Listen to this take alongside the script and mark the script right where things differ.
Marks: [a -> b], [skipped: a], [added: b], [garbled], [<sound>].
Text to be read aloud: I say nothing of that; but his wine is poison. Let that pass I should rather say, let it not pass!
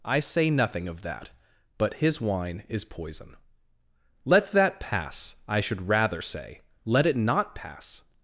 I say nothing of that; but his wine is poison. Let that pass I should rather say, let it not pass!